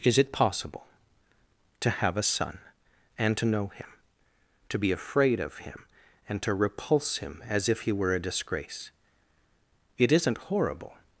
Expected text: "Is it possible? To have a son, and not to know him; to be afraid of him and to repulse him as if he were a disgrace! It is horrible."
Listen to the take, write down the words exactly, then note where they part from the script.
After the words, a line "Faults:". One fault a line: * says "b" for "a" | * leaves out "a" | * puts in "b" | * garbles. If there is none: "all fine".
"Is it possible? To have a son, and to know him; to be afraid of him and to repulse him as if he were a disgrace! It isn't horrible."
Faults:
* leaves out "not"
* says "isn't" for "is"